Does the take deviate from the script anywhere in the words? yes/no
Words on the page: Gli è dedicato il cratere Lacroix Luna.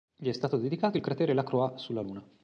yes